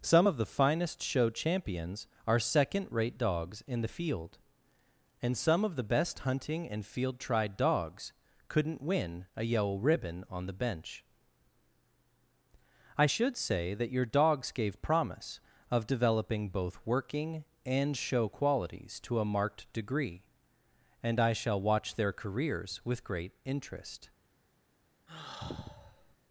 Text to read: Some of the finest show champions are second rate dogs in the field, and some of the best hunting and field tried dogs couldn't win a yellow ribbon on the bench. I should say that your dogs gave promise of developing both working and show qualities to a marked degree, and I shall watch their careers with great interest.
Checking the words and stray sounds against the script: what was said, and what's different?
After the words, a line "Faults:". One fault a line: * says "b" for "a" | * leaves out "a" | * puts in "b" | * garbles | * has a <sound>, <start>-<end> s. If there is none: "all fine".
Some of the finest show champions are second rate dogs in the field, and some of the best hunting and field tried dogs couldn't win a yellow ribbon on the bench. I should say that your dogs gave promise of developing both working and show qualities to a marked degree, and I shall watch their careers with great interest.
Faults:
* has a sigh, 25.1-26.2 s